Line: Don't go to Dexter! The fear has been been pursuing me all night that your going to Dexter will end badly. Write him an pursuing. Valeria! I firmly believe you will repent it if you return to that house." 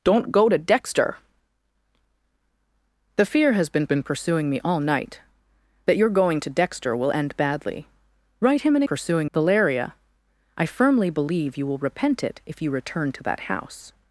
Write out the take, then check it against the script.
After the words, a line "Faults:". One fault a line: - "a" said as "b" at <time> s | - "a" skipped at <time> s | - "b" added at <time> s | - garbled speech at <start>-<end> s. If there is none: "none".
Don't go to Dexter! The fear has been been pursuing me all night that your going to Dexter will end badly. Write him an pursuing. Valeria! I firmly believe you will repent it if you return to that house."
Faults:
none